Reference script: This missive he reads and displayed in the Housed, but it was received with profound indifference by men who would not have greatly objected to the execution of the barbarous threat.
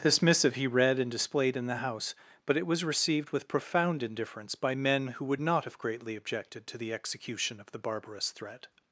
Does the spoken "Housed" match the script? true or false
false